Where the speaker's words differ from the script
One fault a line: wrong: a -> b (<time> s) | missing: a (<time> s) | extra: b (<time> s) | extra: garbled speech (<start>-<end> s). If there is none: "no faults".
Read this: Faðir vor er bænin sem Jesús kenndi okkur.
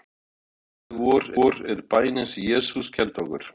extra: vor (1.3 s)